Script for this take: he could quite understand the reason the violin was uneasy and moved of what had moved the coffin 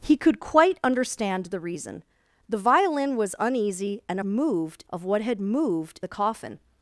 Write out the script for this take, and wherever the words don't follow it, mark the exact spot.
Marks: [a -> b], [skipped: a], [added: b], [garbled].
he could quite understand the reason the violin was uneasy and moved of what had moved the coffin